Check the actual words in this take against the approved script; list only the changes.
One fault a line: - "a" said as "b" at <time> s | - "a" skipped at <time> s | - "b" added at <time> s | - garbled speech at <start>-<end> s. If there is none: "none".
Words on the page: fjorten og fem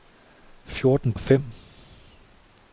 none